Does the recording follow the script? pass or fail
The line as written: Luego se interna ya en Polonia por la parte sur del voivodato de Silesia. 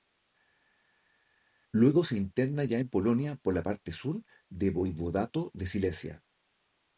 pass